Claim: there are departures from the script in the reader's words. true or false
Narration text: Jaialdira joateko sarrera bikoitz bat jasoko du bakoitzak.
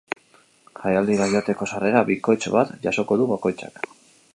false